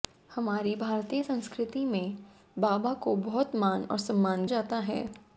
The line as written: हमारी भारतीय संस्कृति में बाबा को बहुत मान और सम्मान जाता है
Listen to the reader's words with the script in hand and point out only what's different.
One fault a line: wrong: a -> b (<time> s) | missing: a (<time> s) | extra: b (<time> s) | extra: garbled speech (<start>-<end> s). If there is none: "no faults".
no faults